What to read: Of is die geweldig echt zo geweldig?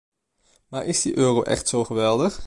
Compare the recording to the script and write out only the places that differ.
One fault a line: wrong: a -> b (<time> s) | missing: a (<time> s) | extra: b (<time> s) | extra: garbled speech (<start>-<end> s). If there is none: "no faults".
wrong: Of -> Maar (0.7 s)
wrong: geweldig -> euro (1.2 s)